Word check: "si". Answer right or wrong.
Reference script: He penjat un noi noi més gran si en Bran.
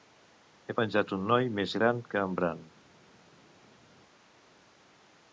wrong